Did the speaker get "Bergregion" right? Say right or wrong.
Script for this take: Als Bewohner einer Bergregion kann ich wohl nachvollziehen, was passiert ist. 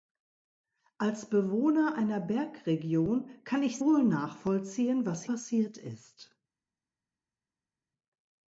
right